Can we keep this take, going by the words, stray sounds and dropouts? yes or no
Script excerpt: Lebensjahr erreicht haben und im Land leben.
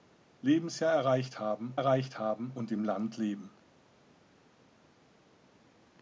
no